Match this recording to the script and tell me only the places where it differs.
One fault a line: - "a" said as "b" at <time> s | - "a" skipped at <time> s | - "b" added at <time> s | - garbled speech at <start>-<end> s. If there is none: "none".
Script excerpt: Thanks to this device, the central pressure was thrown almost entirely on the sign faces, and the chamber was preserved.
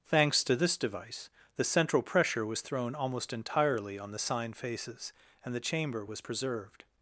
none